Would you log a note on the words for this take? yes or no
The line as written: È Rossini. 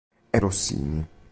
no